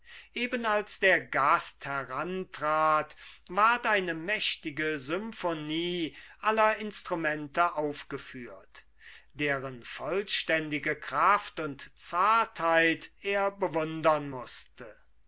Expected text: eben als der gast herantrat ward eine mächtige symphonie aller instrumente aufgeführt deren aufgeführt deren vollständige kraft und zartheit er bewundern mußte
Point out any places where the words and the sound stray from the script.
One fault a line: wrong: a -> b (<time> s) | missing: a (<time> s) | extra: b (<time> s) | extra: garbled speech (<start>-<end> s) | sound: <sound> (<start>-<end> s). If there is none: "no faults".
missing: aufgeführt deren (9.8 s)